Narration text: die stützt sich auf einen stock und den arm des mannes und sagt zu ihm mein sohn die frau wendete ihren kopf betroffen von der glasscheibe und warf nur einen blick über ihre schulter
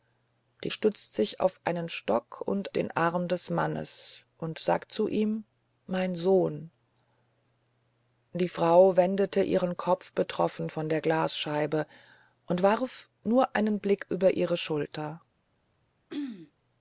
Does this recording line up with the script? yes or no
yes